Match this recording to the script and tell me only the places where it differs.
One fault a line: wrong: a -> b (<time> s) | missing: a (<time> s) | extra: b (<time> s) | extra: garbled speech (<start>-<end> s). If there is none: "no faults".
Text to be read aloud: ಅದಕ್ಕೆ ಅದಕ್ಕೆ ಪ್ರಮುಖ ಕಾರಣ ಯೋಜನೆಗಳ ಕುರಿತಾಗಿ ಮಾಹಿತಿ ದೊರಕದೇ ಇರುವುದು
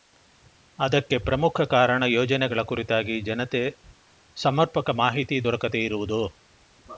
missing: ಅದಕ್ಕೆ (1.2 s)
extra: ಜನತೆ ಸಮರ್ಪಕ (3.2 s)